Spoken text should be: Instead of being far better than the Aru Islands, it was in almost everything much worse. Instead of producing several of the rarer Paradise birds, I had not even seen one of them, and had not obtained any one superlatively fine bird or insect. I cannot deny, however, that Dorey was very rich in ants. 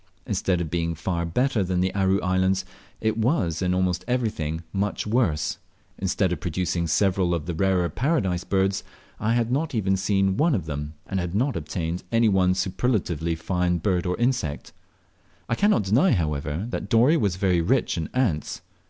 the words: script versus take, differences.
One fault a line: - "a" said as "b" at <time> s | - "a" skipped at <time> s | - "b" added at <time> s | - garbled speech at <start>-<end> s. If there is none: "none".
none